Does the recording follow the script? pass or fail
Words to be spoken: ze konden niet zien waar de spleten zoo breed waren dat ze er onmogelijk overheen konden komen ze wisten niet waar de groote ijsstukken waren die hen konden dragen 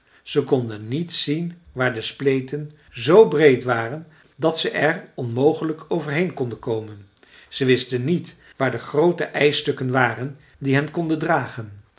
pass